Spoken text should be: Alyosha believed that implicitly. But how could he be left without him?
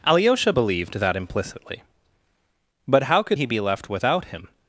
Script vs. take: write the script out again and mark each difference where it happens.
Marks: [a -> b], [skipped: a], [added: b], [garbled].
Alyosha believed that implicitly. But how could he be left without him?